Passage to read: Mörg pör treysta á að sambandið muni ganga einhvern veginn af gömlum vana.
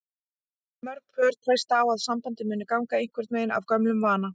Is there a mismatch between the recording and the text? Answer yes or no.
no